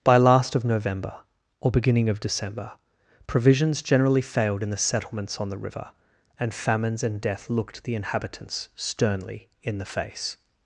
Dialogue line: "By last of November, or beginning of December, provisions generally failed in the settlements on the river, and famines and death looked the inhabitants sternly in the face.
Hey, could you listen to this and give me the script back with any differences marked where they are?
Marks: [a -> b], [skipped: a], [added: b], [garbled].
"By last of November, or beginning of December, provisions generally failed in the settlements on the river, and famines and death looked the inhabitants sternly in the face.